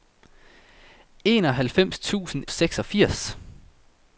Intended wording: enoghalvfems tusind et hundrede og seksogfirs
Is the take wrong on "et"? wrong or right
wrong